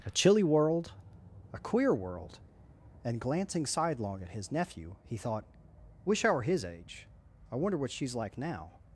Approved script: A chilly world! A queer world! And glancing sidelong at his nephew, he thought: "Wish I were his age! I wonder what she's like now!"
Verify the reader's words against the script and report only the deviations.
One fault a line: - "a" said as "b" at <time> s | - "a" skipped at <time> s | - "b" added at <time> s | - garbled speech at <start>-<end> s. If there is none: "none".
none